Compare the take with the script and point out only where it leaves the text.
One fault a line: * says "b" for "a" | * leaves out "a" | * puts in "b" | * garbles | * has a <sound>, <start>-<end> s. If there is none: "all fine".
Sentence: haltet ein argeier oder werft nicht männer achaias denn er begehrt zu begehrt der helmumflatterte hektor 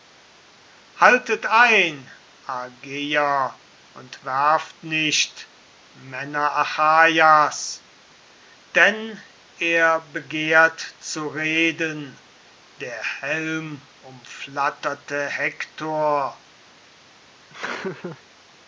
* says "und" for "oder"
* says "reden" for "begehrt"
* has a laugh, 17.5-18.2 s